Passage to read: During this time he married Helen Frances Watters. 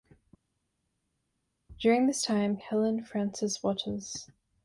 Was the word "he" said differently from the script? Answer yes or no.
yes